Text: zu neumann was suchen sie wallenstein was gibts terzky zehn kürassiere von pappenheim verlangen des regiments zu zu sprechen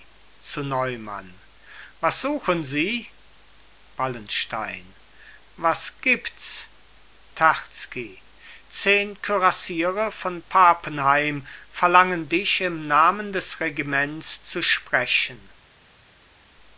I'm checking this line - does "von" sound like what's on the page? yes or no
yes